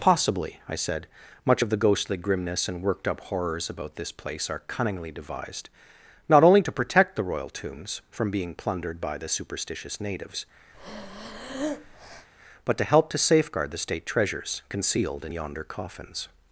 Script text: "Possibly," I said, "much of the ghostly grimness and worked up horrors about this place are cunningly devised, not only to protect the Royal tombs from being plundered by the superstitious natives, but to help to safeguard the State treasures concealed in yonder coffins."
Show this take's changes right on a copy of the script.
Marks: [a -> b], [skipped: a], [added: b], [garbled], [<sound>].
"Possibly," I said, "much of the ghostly grimness and worked up horrors about this place are cunningly devised, not only to protect the Royal tombs from being plundered by the superstitious natives, [breath] but to help to safeguard the State treasures concealed in yonder coffins."